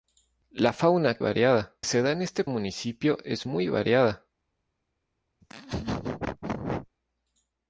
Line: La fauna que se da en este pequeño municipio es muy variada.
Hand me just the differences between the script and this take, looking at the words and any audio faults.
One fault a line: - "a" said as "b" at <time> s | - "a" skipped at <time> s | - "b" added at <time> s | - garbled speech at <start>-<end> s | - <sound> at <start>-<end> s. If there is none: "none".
- "que" said as "variada" at 1.2 s
- "pequeño" skipped at 2.5 s
- laugh at 5.4-6.9 s